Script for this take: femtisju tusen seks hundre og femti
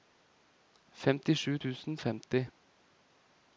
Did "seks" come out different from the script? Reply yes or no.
yes